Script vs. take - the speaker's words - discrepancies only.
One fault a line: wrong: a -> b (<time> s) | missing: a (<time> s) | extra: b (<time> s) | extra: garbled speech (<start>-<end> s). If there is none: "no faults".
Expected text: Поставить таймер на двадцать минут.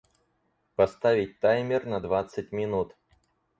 no faults